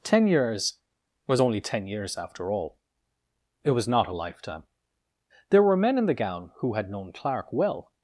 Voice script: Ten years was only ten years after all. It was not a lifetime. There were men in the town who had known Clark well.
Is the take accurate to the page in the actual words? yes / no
no